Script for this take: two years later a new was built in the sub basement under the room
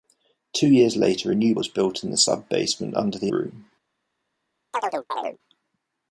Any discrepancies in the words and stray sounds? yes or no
yes